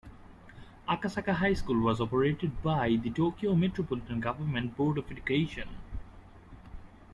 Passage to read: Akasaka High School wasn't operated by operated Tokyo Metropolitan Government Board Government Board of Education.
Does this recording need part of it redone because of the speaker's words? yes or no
yes